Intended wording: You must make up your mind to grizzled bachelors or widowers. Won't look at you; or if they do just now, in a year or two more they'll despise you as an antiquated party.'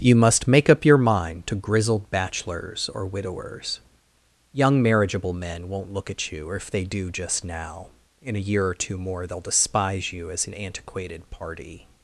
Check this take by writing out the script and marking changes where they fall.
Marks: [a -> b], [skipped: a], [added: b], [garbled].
You must make up your mind to grizzled bachelors or widowers. [added: Young marriageable men] Won't look at you; or if they do just now, in a year or two more they'll despise you as an antiquated party.'